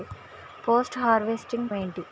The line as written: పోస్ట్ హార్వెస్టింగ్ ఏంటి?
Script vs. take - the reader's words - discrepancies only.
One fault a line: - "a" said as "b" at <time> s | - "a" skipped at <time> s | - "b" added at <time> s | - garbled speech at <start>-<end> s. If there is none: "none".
none